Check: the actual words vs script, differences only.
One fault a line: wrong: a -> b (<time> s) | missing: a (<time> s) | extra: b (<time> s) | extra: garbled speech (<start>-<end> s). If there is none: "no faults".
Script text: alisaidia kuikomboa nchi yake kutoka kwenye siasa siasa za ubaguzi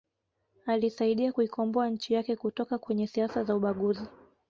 missing: siasa (3.4 s)